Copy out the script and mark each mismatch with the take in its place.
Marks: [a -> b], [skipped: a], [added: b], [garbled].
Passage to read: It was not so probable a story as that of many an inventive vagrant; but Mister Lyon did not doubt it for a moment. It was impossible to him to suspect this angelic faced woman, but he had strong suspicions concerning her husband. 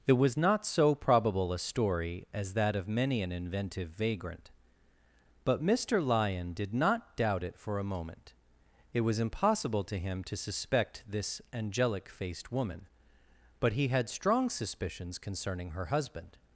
It was not so probable a story as that of many an inventive vagrant; but Mister Lyon did not doubt it for a moment. It was impossible to him to suspect this angelic faced woman, but he had strong suspicions concerning her husband.